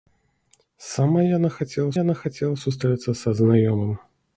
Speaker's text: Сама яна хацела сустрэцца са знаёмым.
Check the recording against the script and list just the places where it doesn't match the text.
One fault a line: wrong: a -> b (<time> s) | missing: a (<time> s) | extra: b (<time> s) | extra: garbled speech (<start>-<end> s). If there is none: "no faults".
extra: яна хацела (2.0 s)